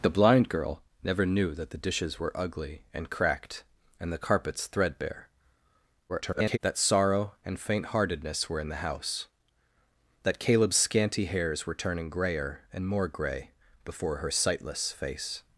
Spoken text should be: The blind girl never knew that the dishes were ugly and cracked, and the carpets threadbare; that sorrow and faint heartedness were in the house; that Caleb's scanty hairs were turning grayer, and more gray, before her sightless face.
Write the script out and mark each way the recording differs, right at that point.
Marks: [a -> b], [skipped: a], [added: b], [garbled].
The blind girl never knew that the dishes were ugly and cracked, and the carpets threadbare; [garbled] that sorrow and faint heartedness were in the house; that Caleb's scanty hairs were turning grayer, and more gray, before her sightless face.